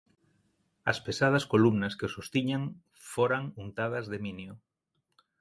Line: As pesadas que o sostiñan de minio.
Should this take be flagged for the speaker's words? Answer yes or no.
yes